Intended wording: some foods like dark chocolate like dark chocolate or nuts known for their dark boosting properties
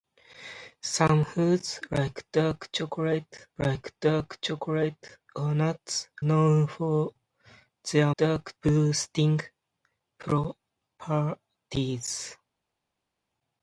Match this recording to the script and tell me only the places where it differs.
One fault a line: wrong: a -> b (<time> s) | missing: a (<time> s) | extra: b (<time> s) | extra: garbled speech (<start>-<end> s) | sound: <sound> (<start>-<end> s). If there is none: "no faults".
no faults